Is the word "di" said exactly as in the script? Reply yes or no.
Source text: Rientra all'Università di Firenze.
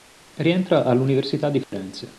yes